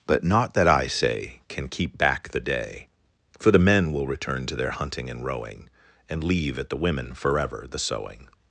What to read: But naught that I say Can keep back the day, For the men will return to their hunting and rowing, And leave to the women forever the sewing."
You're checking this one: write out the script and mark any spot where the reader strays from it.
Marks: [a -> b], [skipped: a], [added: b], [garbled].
But naught that I say Can keep back the day, For the men will return to their hunting and rowing, And leave [to -> at] the women forever the sewing."